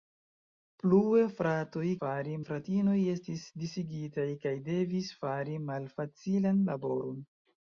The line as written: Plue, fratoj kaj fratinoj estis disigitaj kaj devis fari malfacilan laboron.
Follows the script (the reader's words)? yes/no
no